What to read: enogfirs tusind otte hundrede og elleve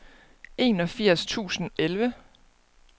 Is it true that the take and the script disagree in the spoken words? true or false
true